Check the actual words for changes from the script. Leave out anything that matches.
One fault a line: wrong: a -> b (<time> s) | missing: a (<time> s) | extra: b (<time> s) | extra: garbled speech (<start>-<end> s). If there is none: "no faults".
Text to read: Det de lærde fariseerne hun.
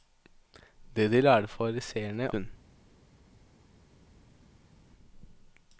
no faults